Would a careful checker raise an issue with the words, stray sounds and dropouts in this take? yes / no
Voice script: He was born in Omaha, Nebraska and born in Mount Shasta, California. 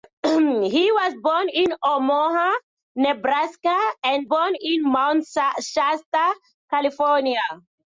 no